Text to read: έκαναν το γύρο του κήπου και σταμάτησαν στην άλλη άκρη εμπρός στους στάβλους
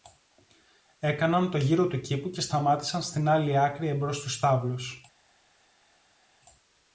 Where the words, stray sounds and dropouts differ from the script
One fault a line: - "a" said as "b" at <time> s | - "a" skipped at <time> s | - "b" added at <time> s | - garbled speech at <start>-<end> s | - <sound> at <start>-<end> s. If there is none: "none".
none